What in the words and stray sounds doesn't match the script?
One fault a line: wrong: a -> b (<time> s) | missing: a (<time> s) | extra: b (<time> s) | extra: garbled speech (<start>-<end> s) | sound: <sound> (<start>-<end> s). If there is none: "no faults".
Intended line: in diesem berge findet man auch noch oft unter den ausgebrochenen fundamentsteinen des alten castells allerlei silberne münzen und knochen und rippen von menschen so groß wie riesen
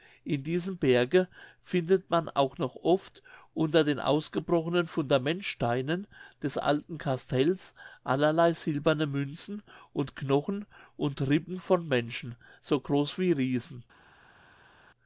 no faults